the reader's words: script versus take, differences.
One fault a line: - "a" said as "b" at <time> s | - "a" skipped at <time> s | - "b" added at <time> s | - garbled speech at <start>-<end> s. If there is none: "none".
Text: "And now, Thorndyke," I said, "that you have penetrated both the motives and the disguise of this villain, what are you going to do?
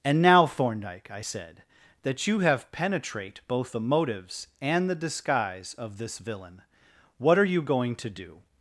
- "penetrated" said as "penetrate" at 2.7 s